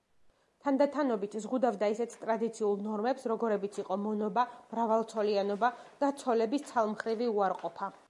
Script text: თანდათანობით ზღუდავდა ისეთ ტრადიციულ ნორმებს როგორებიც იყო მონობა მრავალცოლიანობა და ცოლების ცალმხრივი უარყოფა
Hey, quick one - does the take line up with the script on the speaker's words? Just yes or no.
yes